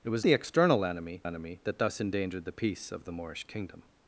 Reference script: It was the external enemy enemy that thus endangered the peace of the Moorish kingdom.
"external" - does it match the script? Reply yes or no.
yes